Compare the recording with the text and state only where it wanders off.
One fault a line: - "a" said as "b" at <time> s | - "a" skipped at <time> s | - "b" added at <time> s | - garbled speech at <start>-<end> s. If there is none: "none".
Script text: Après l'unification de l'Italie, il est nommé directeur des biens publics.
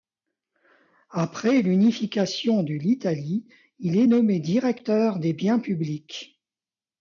none